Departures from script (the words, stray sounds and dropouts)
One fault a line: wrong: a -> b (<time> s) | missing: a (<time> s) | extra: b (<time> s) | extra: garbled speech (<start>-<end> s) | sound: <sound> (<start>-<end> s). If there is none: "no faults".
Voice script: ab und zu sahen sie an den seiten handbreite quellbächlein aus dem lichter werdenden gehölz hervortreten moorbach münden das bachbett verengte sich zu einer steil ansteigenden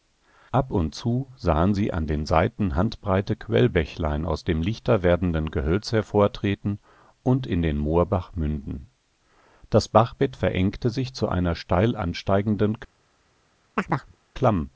extra: und in den (7.2 s)
sound: chirp (13.8-14.2 s)